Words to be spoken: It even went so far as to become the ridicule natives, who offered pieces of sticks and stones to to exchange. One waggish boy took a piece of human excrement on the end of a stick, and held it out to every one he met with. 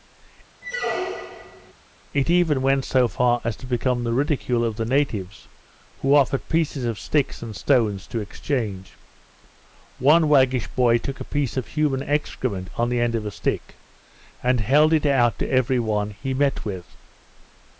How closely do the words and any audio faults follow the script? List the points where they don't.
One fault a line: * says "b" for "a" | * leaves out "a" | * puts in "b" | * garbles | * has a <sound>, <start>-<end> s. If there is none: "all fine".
* has a squeak, 0.6-1.7 s
* puts in "of the"
* leaves out "to"